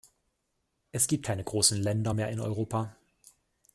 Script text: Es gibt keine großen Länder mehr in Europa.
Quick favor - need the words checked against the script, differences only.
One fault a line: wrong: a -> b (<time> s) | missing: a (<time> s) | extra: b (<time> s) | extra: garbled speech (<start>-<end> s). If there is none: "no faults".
no faults